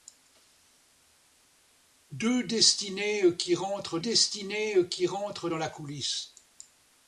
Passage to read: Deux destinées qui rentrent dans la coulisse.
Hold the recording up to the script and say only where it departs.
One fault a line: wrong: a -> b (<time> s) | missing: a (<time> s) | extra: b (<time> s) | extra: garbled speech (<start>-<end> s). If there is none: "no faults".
extra: destinées qui rentrent (4.0 s)